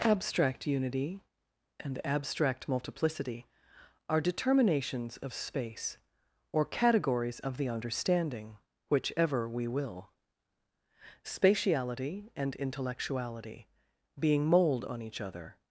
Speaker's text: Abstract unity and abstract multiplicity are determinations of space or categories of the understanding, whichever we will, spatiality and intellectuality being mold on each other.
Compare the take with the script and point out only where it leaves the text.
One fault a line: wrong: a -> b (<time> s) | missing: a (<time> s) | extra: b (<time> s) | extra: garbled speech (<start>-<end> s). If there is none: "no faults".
no faults